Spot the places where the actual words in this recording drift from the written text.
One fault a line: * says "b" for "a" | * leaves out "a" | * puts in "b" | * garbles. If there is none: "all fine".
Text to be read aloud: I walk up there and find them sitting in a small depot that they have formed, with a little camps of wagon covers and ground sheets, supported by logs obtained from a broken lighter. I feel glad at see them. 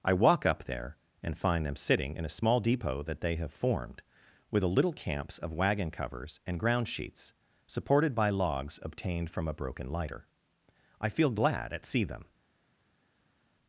all fine